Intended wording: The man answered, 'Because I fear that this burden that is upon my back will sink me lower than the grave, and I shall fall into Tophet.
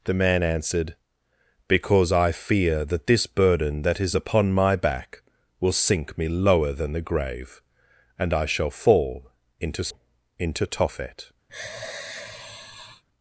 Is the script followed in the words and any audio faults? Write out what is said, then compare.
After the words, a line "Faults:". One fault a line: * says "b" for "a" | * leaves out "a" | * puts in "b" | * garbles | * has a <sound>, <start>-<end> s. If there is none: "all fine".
The man answered, 'Because I fear that this burden that is upon my back will sink me lower than the grave, and I shall fall into into Tophet.
Faults:
* puts in "into"
* has a sigh, 11.5-13.0 s